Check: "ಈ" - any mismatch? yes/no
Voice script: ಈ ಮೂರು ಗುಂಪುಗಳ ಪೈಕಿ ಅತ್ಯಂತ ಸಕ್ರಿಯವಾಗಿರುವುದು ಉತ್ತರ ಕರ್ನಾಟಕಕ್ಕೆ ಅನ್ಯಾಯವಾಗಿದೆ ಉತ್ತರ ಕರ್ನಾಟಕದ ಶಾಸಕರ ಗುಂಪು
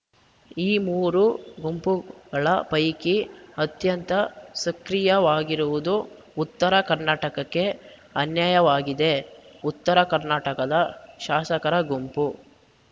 no